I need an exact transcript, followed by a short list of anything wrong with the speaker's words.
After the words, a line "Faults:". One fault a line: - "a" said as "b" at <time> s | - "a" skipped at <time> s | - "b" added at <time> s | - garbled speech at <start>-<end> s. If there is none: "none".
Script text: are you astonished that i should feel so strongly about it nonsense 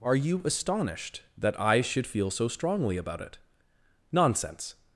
are you astonished that i should feel so strongly about it nonsense
Faults:
none